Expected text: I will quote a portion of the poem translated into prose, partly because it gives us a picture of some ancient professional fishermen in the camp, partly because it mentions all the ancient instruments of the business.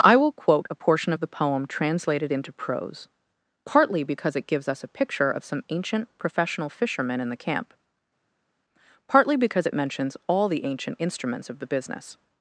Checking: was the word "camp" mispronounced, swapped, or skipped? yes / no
no